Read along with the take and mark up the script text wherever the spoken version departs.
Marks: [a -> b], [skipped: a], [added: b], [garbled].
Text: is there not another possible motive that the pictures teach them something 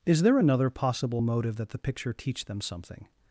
is there [skipped: not] another possible motive that the [pictures -> picture] teach them something